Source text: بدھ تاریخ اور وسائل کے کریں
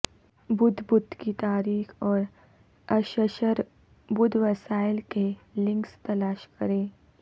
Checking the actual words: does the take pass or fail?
fail